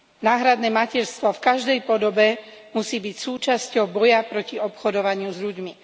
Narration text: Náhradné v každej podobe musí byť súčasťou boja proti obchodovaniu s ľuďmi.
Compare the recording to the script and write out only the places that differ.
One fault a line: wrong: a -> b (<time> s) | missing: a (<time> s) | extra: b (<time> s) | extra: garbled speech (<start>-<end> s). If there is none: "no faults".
extra: materstvo (0.7 s)